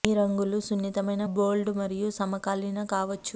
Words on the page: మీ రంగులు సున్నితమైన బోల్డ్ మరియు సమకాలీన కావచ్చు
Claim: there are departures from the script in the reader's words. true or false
false